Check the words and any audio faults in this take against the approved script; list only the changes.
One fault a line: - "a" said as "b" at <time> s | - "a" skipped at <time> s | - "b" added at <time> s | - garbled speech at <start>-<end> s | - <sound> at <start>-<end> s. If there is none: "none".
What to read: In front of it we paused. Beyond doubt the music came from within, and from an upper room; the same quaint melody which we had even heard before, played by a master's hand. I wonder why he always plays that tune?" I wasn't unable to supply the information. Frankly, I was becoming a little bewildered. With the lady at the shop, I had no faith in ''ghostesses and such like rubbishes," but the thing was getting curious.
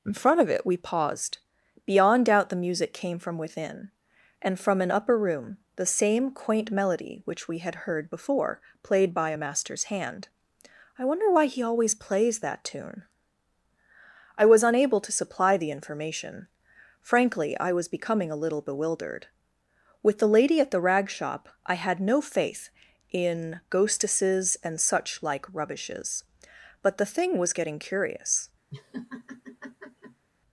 - "even" skipped at 7.8 s
- "wasn't" said as "was" at 14.5 s
- "rag" added at 20.8 s
- laugh at 28.7-30.3 s